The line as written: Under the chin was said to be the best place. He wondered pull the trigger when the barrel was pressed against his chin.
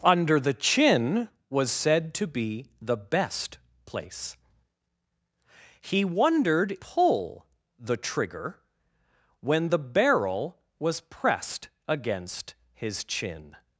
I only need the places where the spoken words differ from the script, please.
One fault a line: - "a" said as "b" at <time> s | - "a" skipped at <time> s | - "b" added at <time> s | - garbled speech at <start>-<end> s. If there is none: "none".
none